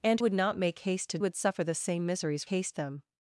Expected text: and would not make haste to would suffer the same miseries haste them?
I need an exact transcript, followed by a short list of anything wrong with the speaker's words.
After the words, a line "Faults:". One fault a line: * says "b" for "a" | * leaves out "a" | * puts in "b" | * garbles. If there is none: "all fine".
and would not make haste to would suffer the same miseries haste them?
Faults:
all fine